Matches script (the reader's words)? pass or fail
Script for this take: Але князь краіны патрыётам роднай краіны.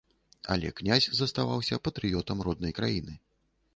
fail